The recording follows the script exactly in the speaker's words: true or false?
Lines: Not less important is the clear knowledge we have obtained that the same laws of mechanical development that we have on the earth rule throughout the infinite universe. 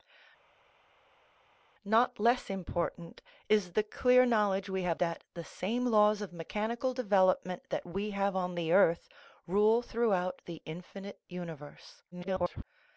false